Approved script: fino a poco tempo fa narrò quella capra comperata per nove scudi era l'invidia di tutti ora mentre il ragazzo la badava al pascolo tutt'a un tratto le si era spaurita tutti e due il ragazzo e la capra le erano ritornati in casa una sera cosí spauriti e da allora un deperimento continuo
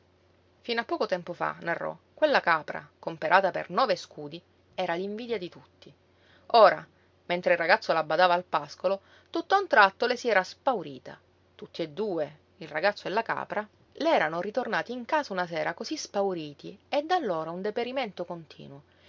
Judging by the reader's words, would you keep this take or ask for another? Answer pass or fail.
pass